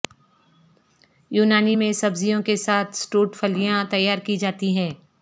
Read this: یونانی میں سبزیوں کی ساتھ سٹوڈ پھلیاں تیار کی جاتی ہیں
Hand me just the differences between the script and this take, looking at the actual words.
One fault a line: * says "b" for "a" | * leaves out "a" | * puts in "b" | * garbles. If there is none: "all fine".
* says "کے" for "کی"